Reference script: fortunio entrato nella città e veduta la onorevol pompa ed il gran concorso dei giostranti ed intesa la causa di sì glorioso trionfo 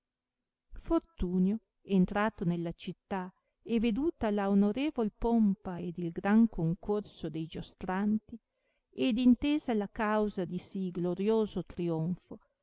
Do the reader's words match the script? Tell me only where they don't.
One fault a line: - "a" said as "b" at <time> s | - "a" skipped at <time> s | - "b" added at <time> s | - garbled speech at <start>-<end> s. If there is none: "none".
none